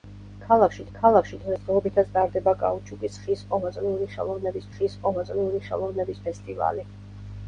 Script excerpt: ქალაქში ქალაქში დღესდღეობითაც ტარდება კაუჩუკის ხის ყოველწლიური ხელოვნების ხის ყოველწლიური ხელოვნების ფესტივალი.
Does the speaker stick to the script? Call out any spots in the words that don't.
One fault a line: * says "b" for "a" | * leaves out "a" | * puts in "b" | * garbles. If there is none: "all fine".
all fine